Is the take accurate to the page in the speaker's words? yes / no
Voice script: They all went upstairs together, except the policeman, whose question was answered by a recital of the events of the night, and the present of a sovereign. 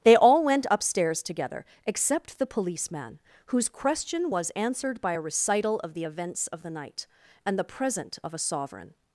yes